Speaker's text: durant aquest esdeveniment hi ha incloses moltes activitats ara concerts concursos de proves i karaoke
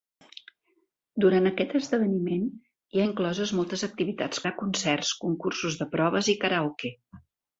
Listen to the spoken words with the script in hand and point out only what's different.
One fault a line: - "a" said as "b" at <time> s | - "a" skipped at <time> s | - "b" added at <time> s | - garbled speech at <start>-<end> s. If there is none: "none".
none